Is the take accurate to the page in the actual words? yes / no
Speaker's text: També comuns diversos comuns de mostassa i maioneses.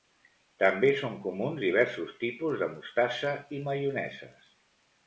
no